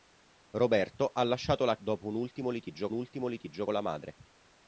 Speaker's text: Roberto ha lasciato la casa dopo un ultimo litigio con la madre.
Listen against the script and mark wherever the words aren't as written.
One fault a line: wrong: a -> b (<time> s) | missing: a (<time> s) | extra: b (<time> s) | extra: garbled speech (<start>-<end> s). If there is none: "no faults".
missing: casa (1.8 s)
extra: ultimo litigio (2.9 s)